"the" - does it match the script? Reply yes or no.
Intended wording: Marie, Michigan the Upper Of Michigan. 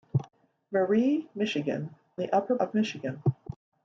yes